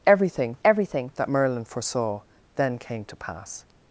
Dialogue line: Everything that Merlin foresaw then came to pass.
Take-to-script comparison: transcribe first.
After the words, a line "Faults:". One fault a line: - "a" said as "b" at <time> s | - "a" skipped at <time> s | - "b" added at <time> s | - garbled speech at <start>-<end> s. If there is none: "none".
Everything everything that Merlin foresaw then came to pass.
Faults:
- "everything" added at 0.6 s